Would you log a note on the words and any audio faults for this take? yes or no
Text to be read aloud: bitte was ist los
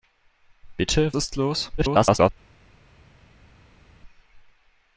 yes